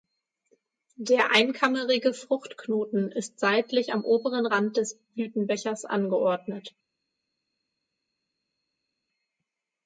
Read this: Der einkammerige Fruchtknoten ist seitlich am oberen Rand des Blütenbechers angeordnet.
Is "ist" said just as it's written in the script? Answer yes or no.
yes